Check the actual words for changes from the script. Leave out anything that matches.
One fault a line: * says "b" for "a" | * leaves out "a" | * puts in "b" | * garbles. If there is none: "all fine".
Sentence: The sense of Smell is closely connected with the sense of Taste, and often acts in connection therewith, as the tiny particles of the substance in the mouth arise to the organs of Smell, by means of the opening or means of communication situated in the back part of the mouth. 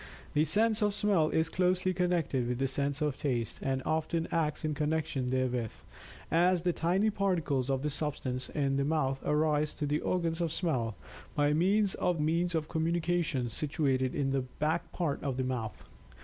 * leaves out "the opening or"